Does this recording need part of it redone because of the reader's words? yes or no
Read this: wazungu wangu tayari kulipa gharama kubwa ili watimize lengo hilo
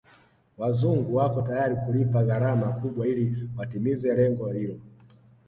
yes